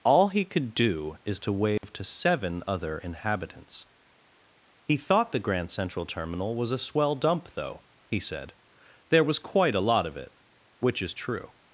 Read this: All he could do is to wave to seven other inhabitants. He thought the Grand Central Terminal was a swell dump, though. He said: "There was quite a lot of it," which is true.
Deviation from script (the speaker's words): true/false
false